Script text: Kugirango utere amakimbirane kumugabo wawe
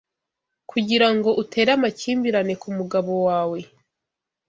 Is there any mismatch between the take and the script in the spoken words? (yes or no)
no